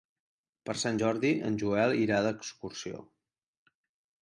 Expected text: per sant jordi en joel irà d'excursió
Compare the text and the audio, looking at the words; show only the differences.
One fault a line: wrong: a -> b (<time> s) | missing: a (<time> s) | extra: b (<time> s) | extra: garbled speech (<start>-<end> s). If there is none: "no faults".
no faults